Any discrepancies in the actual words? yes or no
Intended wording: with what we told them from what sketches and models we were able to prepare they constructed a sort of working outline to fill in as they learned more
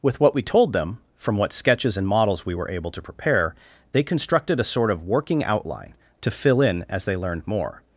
no